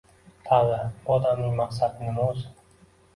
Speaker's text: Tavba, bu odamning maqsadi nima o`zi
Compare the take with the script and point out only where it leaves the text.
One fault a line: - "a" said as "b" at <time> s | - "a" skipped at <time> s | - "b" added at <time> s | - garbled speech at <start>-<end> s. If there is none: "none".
none